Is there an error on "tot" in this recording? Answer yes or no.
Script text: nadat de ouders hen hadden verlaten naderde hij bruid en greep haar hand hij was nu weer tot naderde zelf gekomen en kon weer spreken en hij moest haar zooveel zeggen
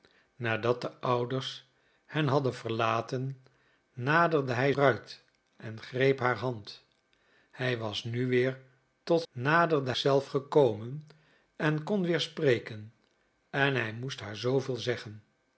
no